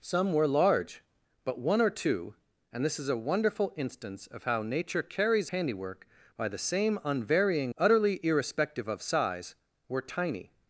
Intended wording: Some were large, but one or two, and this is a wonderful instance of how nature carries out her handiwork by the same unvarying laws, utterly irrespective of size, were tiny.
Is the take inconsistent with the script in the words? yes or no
yes